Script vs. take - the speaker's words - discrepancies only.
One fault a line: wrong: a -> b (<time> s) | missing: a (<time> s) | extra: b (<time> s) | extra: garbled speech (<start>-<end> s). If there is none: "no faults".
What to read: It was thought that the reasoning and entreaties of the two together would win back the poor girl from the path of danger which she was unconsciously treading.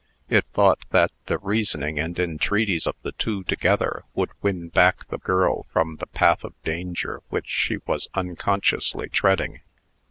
missing: was (0.5 s)
missing: poor (5.2 s)